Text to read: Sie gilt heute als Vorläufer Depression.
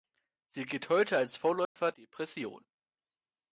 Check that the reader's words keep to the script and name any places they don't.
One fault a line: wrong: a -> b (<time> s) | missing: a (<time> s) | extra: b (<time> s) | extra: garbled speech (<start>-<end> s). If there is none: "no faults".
no faults